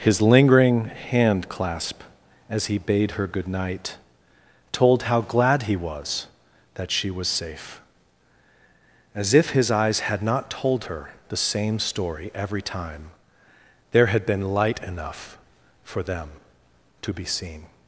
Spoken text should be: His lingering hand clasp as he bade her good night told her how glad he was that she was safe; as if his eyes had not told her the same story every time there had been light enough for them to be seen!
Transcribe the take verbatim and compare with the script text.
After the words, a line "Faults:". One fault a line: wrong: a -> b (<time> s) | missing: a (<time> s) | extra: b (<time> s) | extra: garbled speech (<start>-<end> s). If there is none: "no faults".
His lingering hand clasp as he bade her good night told how glad he was that she was safe; as if his eyes had not told her the same story every time there had been light enough for them to be seen!
Faults:
missing: her (5.0 s)